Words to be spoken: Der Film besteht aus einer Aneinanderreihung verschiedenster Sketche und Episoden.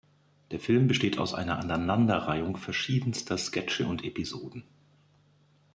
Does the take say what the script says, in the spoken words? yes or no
yes